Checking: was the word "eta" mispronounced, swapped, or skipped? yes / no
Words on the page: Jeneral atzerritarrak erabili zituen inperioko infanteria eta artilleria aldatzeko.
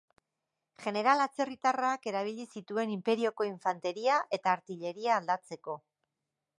no